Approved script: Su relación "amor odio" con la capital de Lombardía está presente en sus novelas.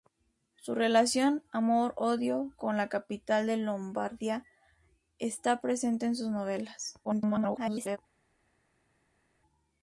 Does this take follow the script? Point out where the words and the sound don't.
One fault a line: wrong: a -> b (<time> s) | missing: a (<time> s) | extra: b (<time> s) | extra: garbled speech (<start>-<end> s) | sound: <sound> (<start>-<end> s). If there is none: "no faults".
extra: garbled speech (7.0-8.0 s)